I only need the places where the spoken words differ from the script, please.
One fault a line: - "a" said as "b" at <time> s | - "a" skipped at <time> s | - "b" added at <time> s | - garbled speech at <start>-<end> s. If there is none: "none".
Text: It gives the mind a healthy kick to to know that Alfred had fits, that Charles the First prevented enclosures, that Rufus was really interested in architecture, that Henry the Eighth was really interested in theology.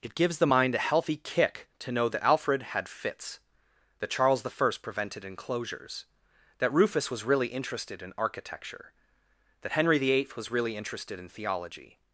- "to" skipped at 1.9 s